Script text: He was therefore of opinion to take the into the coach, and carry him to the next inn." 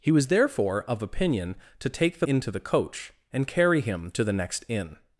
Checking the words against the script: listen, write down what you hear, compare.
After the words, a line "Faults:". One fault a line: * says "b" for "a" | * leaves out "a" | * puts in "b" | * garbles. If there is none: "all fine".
He was therefore of opinion to take the into the coach, and carry him to the next inn."
Faults:
all fine